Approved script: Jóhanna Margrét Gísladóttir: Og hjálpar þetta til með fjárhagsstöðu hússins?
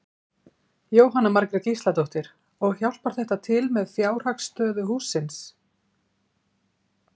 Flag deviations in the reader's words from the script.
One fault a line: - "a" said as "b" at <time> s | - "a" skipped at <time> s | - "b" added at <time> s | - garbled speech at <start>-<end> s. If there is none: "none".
none